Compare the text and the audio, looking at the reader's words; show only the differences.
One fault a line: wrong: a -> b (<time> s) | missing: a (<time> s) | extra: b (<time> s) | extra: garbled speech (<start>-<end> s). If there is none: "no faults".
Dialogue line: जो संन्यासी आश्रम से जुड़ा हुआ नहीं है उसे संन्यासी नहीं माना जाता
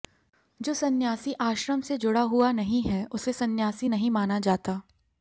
no faults